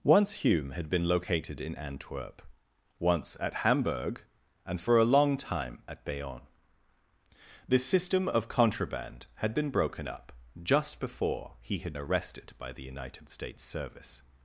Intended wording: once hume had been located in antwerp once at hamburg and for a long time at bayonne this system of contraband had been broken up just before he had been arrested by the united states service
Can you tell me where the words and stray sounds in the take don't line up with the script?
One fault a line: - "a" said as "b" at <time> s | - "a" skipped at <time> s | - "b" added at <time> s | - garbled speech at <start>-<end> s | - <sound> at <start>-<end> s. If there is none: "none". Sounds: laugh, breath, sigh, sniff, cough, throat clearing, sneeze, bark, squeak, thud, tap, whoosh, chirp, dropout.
- "been" skipped at 12.0 s